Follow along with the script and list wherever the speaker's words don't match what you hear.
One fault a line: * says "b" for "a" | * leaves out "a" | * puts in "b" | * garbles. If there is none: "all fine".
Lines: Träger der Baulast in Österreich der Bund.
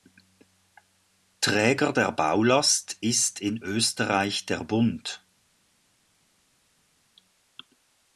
* puts in "ist"